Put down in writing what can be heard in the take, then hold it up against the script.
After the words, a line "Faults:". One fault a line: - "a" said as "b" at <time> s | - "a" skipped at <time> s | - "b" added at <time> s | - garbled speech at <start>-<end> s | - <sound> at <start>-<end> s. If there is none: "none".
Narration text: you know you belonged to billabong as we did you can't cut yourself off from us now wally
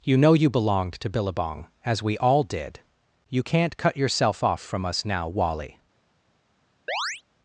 you know you belonged to billabong as we all did you can't cut yourself off from us now wally
Faults:
- "all" added at 2.2 s
- chirp at 6.9-7.2 s